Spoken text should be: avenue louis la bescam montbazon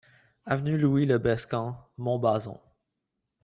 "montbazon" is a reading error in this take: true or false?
false